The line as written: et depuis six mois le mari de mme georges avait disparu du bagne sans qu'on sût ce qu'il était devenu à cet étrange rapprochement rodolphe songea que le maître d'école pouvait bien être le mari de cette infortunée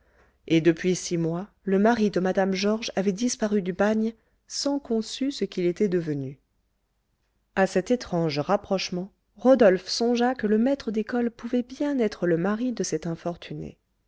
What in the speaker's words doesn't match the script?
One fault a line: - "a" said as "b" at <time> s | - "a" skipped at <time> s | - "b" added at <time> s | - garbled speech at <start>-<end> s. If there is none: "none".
none